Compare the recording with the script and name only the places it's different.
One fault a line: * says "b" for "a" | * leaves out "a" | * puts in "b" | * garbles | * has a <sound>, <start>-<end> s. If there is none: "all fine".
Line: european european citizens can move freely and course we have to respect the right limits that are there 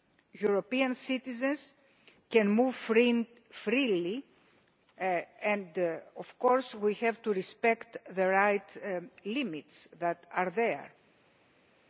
* leaves out "european"
* puts in "of"